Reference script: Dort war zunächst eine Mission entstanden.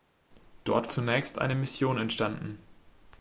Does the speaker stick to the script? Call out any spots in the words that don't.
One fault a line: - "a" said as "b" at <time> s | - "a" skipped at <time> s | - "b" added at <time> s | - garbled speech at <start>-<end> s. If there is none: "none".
- "war" skipped at 0.9 s